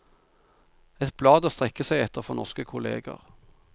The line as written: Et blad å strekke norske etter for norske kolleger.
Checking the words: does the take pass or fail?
fail